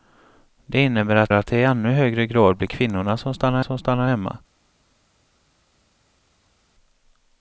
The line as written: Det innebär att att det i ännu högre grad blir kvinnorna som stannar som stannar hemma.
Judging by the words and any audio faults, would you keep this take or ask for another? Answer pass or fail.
pass